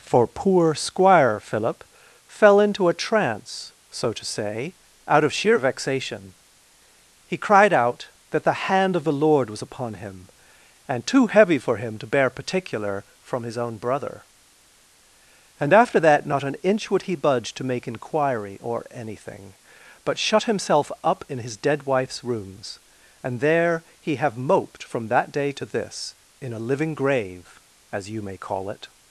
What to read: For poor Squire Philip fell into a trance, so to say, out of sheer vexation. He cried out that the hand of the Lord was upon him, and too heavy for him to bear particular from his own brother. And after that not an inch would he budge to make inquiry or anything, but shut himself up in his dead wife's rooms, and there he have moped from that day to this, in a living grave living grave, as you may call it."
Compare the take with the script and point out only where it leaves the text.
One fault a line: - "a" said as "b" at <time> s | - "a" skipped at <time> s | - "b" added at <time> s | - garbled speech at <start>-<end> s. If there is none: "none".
- "living grave" skipped at 27.6 s